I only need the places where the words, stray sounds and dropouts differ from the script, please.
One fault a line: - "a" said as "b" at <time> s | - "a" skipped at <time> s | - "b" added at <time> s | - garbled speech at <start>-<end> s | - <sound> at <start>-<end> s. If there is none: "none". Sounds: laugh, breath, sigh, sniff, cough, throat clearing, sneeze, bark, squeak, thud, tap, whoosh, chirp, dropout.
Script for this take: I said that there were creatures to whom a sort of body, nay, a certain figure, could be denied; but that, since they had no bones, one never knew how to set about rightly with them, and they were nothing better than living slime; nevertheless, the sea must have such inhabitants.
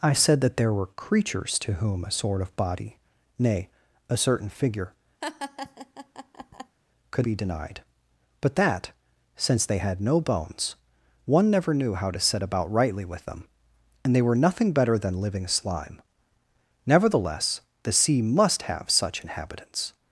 - laugh at 5.2-6.8 s